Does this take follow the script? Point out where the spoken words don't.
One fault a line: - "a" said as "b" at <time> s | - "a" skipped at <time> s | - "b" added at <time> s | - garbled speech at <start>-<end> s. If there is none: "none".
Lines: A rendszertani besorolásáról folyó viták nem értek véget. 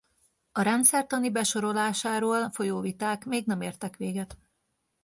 - "még" added at 3.2 s